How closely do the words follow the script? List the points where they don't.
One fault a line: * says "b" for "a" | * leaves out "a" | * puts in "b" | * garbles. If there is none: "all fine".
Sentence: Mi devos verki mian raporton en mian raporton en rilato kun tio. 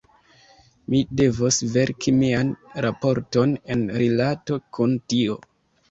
* leaves out "mian raporton en"